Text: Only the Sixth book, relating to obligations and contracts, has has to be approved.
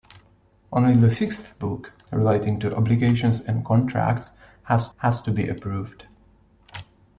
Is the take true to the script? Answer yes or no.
yes